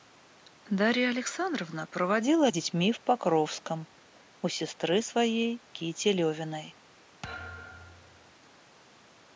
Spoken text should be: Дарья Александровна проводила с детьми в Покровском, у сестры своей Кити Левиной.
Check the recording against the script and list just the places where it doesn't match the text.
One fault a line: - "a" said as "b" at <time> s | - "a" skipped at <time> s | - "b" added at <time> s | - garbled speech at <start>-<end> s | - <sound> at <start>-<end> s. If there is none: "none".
- thud at 7.2-8.3 s